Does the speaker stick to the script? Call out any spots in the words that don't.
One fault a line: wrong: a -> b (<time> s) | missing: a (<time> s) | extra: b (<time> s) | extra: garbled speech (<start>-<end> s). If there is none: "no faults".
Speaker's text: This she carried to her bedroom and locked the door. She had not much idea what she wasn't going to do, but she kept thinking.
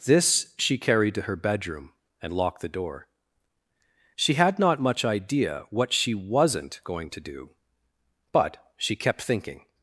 no faults